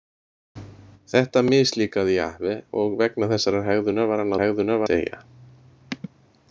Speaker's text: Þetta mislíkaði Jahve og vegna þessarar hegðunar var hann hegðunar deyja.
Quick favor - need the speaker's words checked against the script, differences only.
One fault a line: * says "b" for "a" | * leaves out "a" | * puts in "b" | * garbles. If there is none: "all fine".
all fine